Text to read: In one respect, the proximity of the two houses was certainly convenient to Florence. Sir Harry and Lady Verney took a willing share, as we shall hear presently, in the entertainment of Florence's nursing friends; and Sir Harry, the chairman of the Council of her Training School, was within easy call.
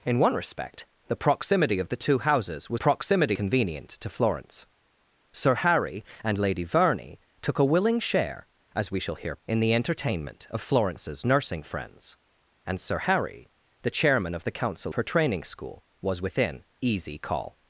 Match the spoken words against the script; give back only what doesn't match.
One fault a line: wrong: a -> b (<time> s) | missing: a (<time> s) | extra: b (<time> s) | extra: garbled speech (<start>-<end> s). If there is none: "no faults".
wrong: certainly -> proximity (2.7 s)
missing: presently (9.4 s)
missing: of (14.9 s)